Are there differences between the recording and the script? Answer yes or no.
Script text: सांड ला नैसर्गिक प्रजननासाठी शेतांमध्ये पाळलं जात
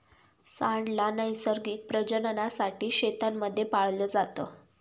no